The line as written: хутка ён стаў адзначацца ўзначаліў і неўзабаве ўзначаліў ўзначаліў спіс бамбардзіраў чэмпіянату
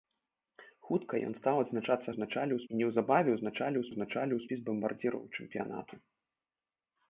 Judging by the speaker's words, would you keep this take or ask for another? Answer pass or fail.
pass